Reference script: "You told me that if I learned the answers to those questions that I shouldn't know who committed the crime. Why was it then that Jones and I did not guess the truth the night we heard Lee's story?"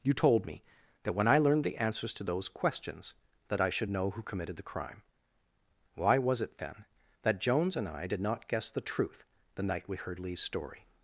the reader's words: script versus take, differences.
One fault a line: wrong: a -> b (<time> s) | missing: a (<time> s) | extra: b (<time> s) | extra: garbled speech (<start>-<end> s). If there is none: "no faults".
wrong: if -> when (1.1 s)
wrong: shouldn't -> should (3.7 s)